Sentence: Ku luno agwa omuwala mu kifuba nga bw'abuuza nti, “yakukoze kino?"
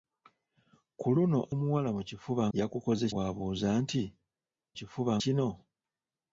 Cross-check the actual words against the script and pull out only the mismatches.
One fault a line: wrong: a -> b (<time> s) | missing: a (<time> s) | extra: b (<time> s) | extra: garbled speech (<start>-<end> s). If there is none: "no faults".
missing: agwa (1.4 s)
wrong: nga -> yakukoze (2.6 s)
wrong: yakukoze -> kifuba (4.8 s)